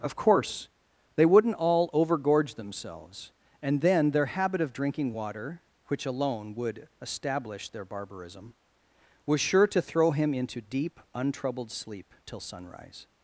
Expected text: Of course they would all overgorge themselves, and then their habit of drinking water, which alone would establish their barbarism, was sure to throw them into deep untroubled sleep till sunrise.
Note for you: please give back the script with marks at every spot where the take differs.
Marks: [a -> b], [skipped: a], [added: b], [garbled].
Of course they [would -> wouldn't] all overgorge themselves, and then their habit of drinking water, which alone would establish their barbarism, was sure to throw [them -> him] into deep untroubled sleep till sunrise.